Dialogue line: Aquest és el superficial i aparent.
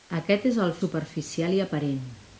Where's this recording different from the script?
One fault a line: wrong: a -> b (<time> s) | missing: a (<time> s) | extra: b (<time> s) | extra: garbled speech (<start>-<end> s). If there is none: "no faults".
no faults